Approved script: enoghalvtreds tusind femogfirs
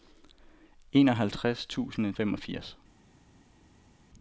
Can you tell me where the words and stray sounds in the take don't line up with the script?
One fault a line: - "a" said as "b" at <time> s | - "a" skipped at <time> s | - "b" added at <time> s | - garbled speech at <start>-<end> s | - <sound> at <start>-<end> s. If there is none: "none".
none